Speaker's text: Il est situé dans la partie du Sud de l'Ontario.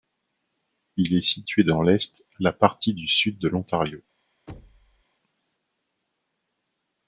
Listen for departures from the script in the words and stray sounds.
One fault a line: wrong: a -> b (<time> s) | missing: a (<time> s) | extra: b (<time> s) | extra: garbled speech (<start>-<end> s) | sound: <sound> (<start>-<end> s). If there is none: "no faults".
extra: l'est (1.8 s)
sound: thud (4.5-5.0 s)